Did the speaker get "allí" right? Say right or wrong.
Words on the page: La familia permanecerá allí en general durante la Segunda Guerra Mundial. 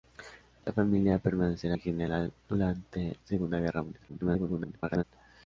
wrong